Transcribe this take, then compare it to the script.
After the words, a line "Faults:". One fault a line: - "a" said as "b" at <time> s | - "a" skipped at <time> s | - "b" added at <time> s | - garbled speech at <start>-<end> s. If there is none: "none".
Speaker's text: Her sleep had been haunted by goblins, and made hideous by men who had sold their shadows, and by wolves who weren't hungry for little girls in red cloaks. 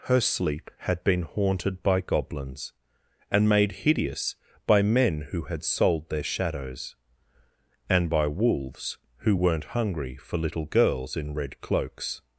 Her sleep had been haunted by goblins, and made hideous by men who had sold their shadows, and by wolves who weren't hungry for little girls in red cloaks.
Faults:
none